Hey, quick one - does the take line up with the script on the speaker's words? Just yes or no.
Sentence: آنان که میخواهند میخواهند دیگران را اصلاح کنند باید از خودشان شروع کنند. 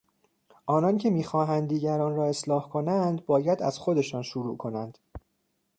no